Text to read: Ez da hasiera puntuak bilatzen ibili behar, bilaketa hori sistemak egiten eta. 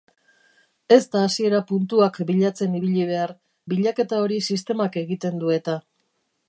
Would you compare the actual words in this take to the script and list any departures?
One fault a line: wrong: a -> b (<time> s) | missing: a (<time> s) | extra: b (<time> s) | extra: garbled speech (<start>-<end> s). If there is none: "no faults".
extra: du (5.5 s)